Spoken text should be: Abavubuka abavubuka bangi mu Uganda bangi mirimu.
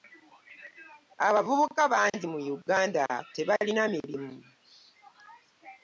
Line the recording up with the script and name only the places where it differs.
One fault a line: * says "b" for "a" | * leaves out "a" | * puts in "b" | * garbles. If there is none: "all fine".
* leaves out "abavubuka"
* says "tebalina" for "bangi"